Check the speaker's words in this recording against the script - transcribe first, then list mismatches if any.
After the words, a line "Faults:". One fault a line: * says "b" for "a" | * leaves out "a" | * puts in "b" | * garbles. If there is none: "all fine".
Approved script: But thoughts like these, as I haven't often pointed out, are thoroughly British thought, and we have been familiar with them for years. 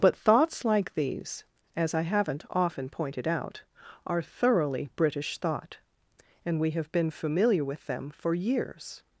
But thoughts like these, as I haven't often pointed out, are thoroughly British thought, and we have been familiar with them for years.
Faults:
all fine